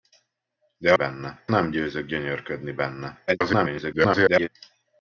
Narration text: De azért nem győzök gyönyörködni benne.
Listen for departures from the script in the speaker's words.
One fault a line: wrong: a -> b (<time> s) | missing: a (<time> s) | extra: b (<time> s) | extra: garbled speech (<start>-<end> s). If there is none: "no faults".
wrong: azért -> benne (0.9 s)
extra: garbled speech (3.3-4.5 s)